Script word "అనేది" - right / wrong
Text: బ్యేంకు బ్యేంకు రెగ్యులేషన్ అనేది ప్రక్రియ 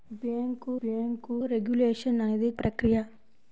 right